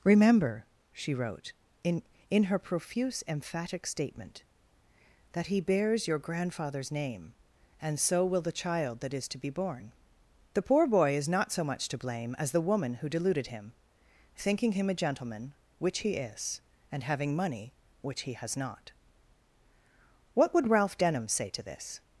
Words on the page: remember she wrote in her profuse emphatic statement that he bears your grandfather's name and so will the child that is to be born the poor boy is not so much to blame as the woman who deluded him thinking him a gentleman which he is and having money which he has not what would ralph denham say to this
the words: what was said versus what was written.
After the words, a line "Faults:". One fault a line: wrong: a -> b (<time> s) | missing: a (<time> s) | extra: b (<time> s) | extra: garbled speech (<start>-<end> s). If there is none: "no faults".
remember she wrote in in her profuse emphatic statement that he bears your grandfather's name and so will the child that is to be born the poor boy is not so much to blame as the woman who deluded him thinking him a gentleman which he is and having money which he has not what would ralph denham say to this
Faults:
extra: in (2.3 s)